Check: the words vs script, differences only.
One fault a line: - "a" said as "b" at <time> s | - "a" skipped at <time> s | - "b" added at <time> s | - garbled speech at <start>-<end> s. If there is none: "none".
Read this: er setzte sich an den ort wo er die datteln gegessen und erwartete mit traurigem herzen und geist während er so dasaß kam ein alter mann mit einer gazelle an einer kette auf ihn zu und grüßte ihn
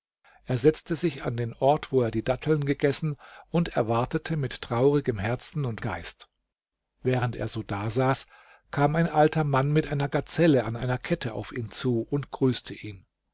none